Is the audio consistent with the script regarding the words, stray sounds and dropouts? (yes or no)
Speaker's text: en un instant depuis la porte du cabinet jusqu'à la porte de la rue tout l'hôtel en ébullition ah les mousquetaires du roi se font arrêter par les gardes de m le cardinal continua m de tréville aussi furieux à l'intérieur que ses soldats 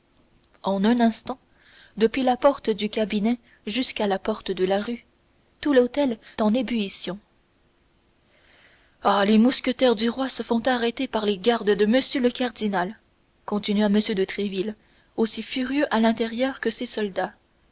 yes